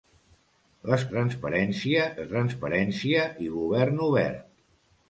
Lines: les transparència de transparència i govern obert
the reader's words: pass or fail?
pass